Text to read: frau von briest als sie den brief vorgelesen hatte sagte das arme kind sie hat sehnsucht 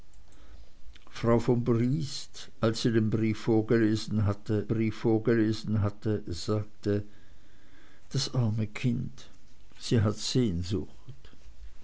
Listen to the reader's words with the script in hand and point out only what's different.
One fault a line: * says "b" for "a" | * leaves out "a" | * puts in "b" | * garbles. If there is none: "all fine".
* puts in "brief vorgelesen hatte"